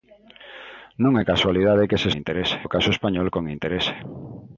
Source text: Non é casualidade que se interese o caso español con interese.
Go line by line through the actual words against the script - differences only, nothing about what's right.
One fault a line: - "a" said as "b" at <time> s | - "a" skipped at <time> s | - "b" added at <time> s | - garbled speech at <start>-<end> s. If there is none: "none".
none